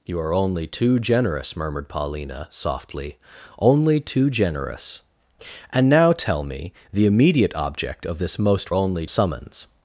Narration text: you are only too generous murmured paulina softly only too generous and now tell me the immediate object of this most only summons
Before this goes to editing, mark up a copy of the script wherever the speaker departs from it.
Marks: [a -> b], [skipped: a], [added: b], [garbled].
you are only too generous murmured paulina softly only too generous and now tell me the immediate object of this most only summons